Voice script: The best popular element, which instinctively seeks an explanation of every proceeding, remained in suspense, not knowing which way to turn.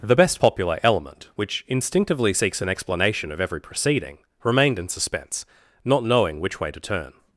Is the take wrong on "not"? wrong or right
right